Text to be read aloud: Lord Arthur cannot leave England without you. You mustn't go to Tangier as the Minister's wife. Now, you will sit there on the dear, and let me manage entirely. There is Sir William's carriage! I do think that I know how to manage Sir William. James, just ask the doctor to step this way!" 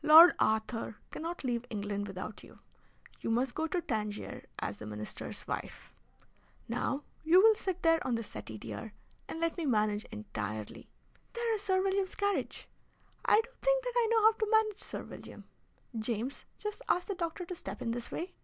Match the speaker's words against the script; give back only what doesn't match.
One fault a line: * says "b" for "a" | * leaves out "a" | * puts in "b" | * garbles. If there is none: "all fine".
* says "must" for "mustn't"
* puts in "settee"
* puts in "in"